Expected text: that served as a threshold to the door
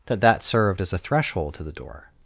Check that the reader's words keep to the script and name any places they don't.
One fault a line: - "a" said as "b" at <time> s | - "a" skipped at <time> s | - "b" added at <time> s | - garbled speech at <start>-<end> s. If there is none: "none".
- "that" added at 0.2 s